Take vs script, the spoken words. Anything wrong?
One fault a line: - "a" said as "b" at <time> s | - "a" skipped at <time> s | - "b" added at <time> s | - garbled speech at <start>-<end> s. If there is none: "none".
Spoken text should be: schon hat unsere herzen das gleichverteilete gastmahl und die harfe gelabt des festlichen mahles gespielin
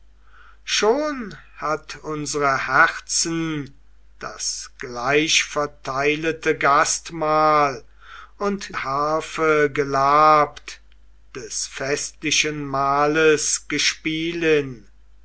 - "die" skipped at 8.7 s